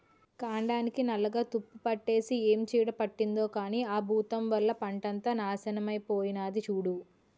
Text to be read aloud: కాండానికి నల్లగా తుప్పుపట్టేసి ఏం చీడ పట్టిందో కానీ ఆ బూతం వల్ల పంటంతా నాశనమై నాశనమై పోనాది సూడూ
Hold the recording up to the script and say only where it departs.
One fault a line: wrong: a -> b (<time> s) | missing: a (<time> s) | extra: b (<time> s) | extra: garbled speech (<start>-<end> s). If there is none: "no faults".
missing: నాశనమై (6.0 s)